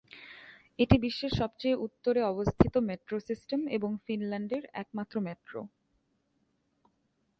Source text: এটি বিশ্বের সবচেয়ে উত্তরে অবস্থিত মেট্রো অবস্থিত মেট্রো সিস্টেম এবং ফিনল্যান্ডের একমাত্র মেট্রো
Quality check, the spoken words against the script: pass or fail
fail